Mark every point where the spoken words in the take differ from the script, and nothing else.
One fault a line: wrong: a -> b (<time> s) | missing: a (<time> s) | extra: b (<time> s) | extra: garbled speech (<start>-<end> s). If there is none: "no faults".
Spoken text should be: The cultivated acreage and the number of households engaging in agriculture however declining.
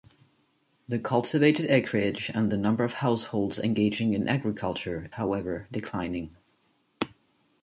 no faults